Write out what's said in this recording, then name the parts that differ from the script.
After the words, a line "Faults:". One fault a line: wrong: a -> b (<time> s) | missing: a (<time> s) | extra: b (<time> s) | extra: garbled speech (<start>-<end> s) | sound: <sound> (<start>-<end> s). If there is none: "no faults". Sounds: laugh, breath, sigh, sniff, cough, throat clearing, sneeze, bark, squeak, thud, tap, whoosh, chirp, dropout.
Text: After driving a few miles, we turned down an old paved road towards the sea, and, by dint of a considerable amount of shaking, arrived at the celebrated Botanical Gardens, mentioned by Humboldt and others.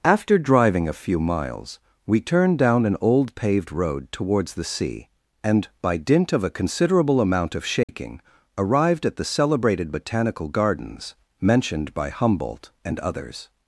After driving a few miles, we turned down an old paved road towards the sea, and, by dint of a considerable amount of shaking, arrived at the celebrated Botanical Gardens, mentioned by Humboldt and others.
Faults:
sound: dropout (7.8-7.9 s)